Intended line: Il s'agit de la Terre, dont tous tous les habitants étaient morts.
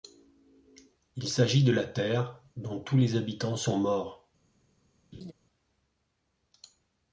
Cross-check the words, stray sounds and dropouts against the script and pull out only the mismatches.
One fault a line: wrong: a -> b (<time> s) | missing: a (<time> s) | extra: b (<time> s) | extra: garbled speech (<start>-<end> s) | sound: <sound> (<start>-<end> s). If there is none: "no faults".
missing: tous (3.0 s)
wrong: étaient -> sont (3.5 s)
sound: laugh (5.1-5.3 s)